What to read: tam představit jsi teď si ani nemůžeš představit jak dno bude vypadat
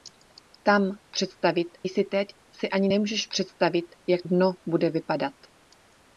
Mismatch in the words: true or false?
false